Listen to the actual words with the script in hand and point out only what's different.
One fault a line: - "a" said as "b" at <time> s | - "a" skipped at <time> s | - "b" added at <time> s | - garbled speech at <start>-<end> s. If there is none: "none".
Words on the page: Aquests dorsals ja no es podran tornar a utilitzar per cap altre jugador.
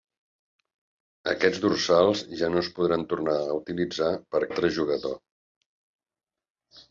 - "cap" skipped at 4.5 s